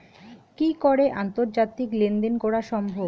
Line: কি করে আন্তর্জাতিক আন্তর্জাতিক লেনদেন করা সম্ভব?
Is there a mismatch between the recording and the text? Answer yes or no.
yes